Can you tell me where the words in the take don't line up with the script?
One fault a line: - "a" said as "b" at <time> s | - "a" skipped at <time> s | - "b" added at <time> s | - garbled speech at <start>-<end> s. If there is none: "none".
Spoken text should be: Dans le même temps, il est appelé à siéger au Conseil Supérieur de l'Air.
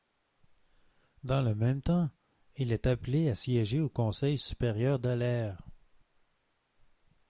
none